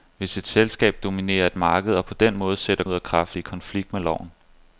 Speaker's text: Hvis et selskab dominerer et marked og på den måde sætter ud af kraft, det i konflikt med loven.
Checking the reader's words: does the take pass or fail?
pass